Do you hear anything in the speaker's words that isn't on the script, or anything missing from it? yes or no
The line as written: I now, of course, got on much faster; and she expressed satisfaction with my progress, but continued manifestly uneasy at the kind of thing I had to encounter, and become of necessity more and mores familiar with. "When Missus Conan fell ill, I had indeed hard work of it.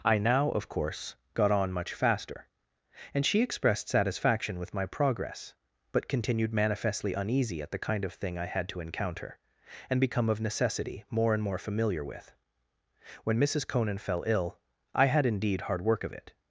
yes